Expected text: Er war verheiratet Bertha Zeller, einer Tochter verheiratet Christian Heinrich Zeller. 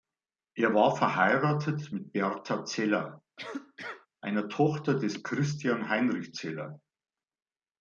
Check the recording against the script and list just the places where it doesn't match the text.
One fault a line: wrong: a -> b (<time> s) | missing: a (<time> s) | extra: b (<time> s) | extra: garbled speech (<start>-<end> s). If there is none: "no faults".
extra: mit (1.9 s)
wrong: verheiratet -> des (5.0 s)